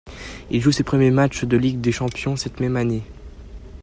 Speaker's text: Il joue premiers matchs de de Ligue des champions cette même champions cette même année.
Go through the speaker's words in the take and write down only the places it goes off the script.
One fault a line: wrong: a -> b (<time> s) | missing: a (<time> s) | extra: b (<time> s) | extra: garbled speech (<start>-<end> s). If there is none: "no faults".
extra: ses (0.7 s)
missing: de (1.6 s)
missing: champions cette même (2.8 s)